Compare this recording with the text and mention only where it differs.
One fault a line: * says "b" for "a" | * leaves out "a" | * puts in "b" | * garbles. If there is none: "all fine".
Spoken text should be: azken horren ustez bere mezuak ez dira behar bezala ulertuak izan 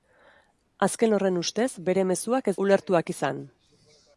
* leaves out "dira behar bezala"